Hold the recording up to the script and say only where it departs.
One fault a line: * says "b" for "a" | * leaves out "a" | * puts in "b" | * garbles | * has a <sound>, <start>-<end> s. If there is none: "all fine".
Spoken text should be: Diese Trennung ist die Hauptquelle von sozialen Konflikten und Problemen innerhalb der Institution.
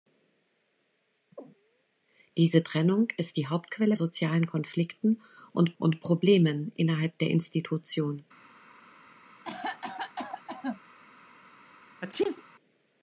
* leaves out "von"
* puts in "und"
* has a cough, 9.4-10.8 s
* has a sneeze, 12.0-12.4 s